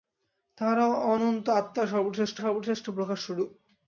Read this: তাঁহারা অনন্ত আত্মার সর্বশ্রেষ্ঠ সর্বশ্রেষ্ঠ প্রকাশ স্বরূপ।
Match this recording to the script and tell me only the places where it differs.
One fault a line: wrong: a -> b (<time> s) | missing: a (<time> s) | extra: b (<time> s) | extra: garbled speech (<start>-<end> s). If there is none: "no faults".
no faults